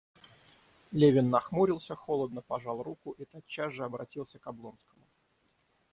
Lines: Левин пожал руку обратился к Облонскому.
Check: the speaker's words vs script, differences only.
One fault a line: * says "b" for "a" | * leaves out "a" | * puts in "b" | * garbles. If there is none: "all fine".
* puts in "нахмурился холодно"
* puts in "и тотчас же"